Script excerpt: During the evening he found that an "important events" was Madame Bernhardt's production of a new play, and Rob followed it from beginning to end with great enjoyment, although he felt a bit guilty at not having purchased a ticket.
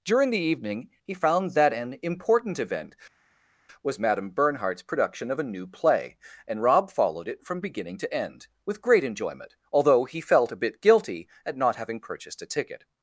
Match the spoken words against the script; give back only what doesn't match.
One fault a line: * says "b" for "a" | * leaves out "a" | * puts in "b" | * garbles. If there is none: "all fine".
* says "event" for "events"